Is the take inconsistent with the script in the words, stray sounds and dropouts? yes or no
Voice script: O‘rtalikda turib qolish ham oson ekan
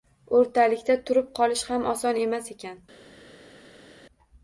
yes